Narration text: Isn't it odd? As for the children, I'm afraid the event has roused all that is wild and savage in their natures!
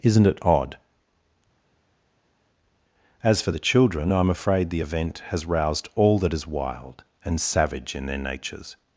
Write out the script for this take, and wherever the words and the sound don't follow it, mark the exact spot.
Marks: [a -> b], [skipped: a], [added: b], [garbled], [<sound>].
Isn't it odd? As for the children, I'm afraid the event has roused all that is wild and savage in their natures!